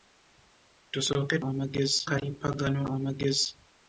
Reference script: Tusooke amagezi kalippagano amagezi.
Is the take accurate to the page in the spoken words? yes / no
yes